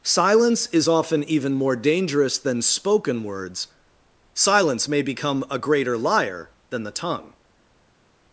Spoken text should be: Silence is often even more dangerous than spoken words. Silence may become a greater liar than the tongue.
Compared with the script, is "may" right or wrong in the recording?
right